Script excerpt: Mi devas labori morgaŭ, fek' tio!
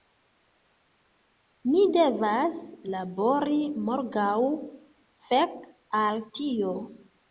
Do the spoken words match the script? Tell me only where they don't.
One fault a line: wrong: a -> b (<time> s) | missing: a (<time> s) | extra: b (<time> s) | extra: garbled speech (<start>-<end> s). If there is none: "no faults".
extra: al (6.0 s)